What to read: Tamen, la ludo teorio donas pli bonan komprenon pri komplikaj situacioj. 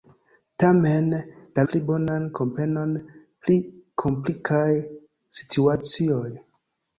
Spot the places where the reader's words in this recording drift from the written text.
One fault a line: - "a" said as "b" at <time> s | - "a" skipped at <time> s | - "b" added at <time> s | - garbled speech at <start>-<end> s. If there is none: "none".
- "ludo teorio donas" skipped at 1.6 s